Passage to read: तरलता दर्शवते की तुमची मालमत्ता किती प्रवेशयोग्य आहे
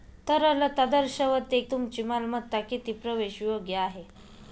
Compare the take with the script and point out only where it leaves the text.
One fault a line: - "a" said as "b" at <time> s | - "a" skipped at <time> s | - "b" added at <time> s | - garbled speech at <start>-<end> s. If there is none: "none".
- "की" skipped at 1.6 s